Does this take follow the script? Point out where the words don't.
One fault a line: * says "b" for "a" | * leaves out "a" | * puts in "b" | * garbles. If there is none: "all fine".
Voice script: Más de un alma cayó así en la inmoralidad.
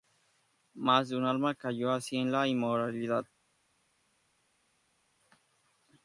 all fine